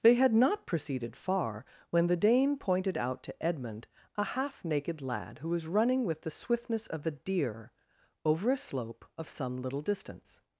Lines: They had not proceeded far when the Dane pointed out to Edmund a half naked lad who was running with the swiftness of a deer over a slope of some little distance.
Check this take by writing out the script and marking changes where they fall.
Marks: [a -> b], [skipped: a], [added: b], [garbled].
They had not proceeded far when the Dane pointed out to Edmund a half naked lad who was running with the swiftness of a deer over a slope of some little distance.